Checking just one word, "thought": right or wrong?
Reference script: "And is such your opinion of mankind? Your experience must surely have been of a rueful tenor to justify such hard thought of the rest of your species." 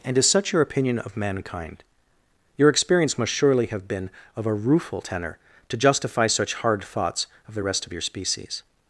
wrong